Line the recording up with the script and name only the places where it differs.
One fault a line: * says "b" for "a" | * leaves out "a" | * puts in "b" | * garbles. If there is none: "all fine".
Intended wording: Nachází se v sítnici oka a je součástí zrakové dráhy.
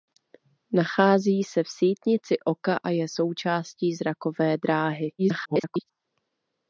* garbles